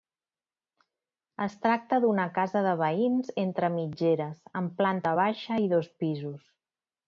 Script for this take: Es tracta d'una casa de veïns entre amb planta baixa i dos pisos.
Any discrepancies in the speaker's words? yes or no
yes